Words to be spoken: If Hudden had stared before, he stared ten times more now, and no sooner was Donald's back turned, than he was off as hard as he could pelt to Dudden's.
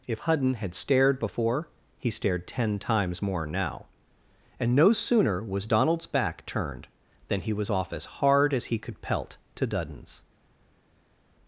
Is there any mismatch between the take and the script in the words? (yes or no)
no